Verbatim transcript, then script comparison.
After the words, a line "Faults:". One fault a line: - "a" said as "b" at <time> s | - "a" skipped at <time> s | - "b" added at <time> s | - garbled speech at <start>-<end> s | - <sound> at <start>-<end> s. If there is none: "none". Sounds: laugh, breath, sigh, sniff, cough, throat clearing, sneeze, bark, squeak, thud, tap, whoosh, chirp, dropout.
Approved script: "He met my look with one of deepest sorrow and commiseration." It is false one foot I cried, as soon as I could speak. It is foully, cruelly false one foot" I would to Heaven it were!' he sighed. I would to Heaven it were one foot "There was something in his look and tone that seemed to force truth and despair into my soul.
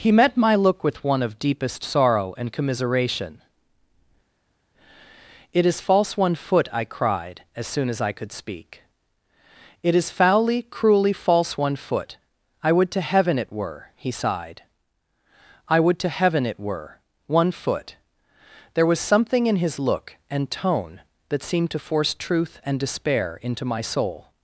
"He met my look with one of deepest sorrow and commiseration." It is false one foot I cried, as soon as I could speak. It is foully, cruelly false one foot" I would to Heaven it were!' he sighed. I would to Heaven it were one foot "There was something in his look and tone that seemed to force truth and despair into my soul.
Faults:
none